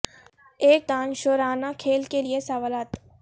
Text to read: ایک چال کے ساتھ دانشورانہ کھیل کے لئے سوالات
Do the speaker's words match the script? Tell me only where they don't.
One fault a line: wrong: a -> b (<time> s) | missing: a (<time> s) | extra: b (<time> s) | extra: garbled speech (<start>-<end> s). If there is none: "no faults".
missing: چال کے ساتھ (0.8 s)